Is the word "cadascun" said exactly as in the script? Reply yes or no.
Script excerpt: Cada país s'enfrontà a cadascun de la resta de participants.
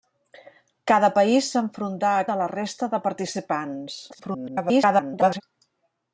no